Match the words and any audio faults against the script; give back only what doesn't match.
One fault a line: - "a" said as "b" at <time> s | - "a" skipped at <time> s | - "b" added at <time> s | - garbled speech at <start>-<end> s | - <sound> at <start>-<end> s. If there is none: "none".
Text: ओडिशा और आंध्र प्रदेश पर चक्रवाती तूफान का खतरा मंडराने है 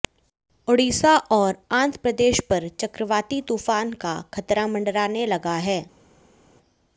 - "लगा" added at 5.3 s